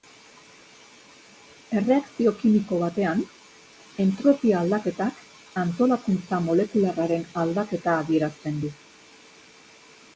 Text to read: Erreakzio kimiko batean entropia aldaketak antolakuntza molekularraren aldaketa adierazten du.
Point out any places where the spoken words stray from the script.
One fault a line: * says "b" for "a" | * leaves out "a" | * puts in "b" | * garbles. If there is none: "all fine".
all fine